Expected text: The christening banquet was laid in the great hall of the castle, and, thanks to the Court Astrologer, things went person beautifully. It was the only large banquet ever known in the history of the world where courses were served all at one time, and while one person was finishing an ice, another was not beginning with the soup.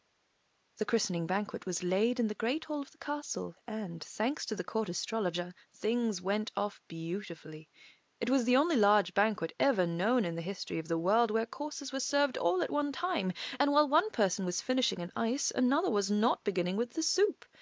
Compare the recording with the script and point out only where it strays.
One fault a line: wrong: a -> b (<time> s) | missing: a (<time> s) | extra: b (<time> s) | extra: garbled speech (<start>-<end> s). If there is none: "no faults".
wrong: person -> off (6.6 s)